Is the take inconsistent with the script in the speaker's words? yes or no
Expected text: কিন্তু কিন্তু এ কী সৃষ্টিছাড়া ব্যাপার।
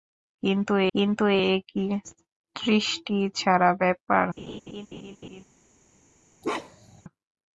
no